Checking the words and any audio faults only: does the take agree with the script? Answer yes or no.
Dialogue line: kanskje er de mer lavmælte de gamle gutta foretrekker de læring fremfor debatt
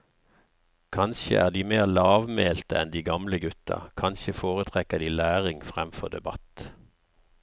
no